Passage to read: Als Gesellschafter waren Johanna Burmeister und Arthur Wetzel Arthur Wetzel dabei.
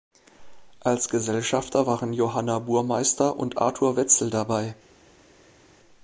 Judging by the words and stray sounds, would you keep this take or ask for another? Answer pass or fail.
fail